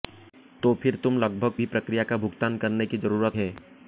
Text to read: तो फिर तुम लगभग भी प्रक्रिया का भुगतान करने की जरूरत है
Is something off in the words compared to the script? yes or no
no